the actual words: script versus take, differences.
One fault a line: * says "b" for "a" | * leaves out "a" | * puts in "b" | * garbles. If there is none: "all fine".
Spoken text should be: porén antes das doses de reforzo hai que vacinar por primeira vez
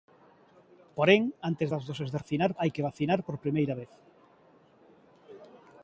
* says "vacinar" for "reforzo"